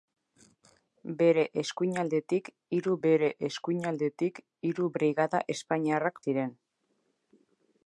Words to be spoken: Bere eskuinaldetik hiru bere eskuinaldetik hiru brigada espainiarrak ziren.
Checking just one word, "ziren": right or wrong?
right